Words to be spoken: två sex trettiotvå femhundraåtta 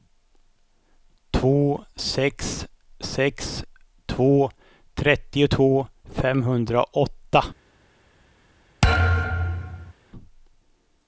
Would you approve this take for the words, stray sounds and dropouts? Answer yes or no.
no